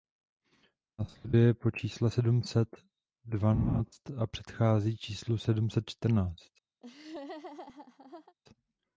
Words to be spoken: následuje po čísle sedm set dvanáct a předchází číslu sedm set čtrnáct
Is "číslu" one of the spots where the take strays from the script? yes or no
no